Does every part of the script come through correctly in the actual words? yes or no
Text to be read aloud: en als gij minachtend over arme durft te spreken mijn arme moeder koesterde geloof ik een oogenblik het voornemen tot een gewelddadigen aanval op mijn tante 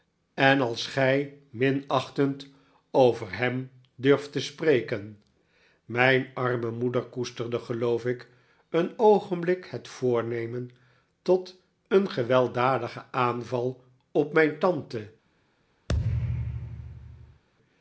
no